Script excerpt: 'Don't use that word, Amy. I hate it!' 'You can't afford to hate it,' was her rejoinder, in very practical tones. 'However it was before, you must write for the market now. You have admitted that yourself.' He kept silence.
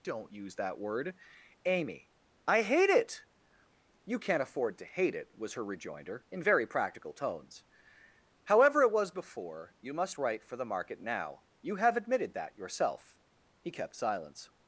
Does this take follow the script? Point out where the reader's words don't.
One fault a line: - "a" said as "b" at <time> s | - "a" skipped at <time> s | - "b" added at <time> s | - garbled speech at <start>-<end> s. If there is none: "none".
none